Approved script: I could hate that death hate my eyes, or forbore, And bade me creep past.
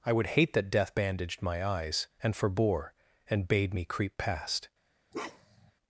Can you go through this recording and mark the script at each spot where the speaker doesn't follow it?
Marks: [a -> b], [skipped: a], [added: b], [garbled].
I [could -> would] hate that death [hate -> bandaged] my eyes, [or -> and] forbore, And bade me creep past.